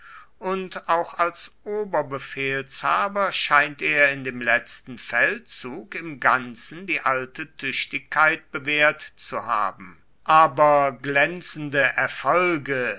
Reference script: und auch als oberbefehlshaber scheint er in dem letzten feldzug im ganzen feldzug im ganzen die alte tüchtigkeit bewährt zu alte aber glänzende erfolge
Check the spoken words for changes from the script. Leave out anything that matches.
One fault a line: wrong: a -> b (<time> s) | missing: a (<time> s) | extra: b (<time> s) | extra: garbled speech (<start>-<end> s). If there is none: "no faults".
missing: feldzug im ganzen (6.9 s)
wrong: alte -> haben (9.5 s)